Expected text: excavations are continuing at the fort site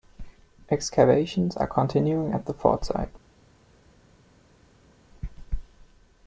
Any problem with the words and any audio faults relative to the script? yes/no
no